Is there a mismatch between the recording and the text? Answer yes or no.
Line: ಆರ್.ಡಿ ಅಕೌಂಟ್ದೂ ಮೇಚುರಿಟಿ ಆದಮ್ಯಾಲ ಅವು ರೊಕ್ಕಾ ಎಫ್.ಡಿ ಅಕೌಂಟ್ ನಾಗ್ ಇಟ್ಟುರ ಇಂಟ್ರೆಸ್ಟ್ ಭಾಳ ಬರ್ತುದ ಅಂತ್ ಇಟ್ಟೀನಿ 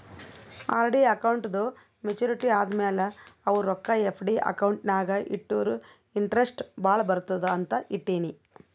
no